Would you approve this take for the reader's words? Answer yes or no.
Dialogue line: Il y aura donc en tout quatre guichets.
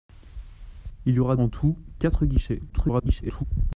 no